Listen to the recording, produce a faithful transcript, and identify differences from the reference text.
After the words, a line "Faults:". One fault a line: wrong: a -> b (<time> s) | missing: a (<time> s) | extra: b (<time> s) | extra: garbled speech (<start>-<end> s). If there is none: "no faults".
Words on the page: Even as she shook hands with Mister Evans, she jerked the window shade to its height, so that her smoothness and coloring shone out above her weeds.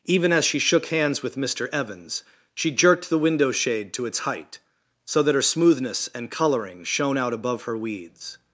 Even as she shook hands with Mister Evans, she jerked the window shade to its height, so that her smoothness and coloring shone out above her weeds.
Faults:
no faults